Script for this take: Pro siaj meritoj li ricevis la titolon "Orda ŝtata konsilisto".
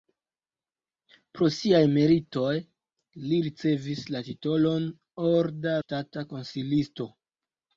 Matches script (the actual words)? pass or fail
pass